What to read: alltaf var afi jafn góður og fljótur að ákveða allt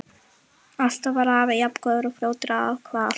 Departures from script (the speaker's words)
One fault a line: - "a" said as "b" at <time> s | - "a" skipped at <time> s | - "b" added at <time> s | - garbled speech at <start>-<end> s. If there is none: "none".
none